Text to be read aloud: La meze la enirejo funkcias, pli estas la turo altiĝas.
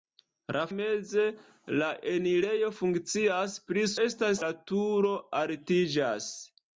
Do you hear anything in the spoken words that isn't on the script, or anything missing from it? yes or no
no